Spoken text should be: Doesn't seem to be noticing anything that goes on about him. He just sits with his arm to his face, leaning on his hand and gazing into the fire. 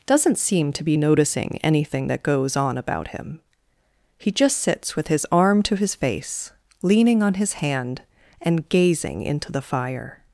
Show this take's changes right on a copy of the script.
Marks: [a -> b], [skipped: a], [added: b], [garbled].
Doesn't seem to be noticing anything that goes on about him. He just sits with his arm to his face, leaning on his hand and gazing into the fire.